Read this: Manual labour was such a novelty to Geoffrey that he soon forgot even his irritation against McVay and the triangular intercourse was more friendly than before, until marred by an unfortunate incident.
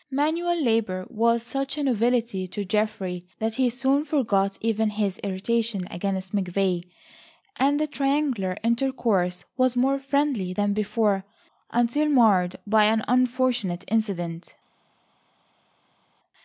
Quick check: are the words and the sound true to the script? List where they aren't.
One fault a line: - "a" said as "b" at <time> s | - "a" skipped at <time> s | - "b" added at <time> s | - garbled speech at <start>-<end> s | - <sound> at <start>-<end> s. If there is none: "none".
none